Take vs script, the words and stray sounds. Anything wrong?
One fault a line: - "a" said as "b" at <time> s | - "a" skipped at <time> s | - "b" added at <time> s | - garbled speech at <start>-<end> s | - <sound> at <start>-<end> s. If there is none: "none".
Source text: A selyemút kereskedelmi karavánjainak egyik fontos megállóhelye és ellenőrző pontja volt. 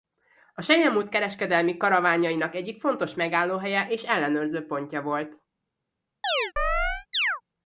- chirp at 6.2-7.4 s